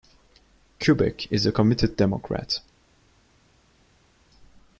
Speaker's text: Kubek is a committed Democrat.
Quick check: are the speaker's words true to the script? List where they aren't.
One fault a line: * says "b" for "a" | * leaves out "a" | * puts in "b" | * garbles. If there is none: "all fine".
all fine